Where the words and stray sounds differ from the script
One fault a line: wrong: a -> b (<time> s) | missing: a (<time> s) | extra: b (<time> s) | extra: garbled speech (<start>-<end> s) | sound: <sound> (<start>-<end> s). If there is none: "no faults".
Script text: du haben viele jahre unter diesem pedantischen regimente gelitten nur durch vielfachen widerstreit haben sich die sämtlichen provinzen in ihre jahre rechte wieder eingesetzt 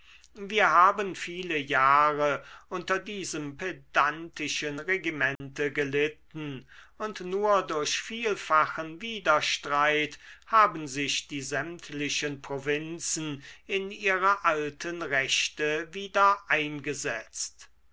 wrong: du -> wir (0.3 s)
sound: dropout (5.4-5.4 s)
extra: und (7.0 s)
wrong: jahre -> alten (14.4 s)